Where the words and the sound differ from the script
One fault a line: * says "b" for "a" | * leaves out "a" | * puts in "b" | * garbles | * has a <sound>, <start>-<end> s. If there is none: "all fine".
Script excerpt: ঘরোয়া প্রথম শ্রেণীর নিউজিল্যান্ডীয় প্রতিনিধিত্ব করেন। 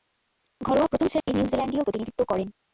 * has a dropout, 1.2-1.3 s